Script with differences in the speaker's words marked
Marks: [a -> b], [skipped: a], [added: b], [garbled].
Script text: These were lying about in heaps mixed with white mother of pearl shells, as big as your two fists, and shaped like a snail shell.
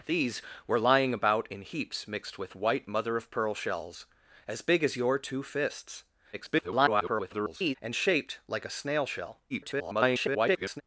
These were lying about in heaps mixed with white mother of pearl shells, as big as your two fists, [garbled] and shaped like a snail shell. [garbled]